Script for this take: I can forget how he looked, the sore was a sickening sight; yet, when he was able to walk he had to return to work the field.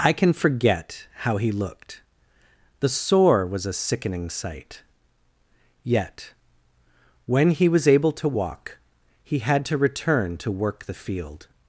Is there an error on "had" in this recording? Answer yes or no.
no